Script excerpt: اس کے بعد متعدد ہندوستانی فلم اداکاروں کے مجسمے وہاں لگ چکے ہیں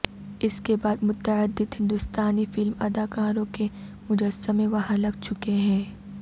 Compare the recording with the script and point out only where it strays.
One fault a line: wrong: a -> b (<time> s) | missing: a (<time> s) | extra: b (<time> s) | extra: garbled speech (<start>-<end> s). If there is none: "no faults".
no faults